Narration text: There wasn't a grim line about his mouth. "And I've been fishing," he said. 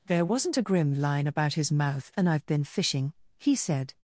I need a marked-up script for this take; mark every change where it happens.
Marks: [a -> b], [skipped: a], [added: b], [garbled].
There wasn't a grim line about his mouth. "And I've been fishing," he said.